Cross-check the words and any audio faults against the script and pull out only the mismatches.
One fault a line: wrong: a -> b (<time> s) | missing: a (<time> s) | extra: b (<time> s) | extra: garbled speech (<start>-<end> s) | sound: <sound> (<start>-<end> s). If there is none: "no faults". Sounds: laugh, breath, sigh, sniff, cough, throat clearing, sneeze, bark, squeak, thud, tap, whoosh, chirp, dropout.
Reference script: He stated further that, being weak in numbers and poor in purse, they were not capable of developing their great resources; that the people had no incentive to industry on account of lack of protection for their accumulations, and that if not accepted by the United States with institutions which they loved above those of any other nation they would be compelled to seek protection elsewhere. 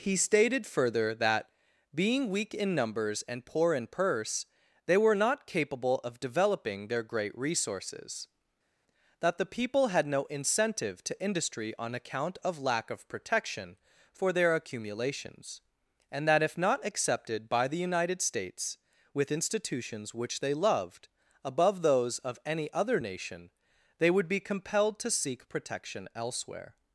no faults